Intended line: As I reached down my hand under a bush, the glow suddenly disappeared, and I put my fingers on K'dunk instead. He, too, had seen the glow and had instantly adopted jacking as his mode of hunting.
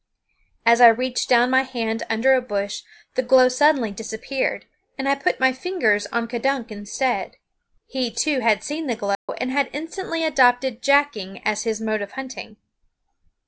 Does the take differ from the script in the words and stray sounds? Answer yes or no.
yes